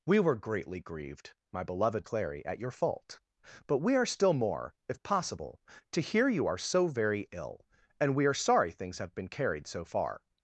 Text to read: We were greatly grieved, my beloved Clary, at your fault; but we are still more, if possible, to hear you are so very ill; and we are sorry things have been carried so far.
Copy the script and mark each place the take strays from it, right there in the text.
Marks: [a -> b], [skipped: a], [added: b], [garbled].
We were greatly grieved, my beloved Clary, at your fault; but we are still more, if possible, to hear you are so very ill; and we are sorry things have been carried so far.